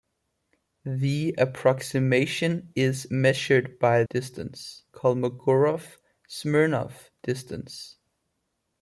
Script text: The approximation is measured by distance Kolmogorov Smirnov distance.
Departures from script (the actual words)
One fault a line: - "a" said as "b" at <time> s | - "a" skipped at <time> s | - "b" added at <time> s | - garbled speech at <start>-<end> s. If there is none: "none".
none